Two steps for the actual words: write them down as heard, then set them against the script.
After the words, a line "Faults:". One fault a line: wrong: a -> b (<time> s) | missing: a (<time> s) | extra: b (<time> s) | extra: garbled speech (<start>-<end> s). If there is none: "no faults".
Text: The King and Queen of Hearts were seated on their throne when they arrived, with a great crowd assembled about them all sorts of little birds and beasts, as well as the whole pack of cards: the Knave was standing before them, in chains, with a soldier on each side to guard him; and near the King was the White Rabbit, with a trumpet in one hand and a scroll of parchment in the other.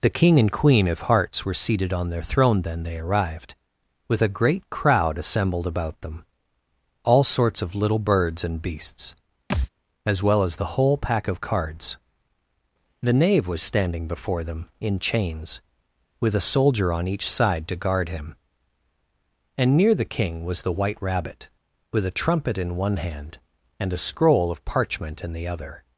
The King and Queen of Hearts were seated on their throne then they arrived, with a great crowd assembled about them all sorts of little birds and beasts, as well as the whole pack of cards: the Knave was standing before them, in chains, with a soldier on each side to guard him; and near the King was the White Rabbit, with a trumpet in one hand and a scroll of parchment in the other.
Faults:
wrong: when -> then (2.6 s)